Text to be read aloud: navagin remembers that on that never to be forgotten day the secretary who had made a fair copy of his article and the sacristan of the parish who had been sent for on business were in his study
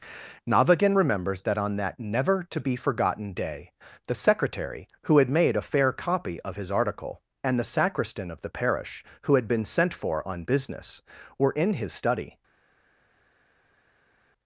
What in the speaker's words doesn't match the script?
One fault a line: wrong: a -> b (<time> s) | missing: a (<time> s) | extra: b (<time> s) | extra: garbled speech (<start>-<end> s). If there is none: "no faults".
no faults